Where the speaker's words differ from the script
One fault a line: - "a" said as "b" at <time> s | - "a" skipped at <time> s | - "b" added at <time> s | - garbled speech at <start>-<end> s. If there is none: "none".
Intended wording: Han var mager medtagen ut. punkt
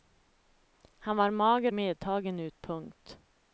none